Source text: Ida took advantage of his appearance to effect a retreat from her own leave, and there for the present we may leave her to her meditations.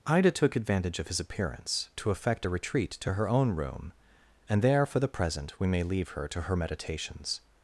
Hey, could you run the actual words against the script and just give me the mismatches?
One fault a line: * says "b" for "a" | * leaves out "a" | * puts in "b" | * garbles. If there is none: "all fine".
* says "to" for "from"
* says "room" for "leave"